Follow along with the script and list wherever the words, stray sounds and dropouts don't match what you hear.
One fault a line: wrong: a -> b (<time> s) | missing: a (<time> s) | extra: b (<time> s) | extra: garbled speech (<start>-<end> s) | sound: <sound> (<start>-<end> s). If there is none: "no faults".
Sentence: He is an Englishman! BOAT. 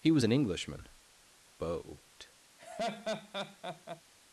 wrong: is -> was (0.1 s)
sound: laugh (2.6-4.0 s)